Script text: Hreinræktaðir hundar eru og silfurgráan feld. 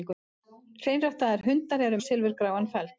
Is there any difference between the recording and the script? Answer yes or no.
no